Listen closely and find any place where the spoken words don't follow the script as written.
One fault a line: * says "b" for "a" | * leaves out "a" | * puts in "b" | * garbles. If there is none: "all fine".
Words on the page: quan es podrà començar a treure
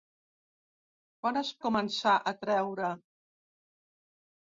* leaves out "podrà"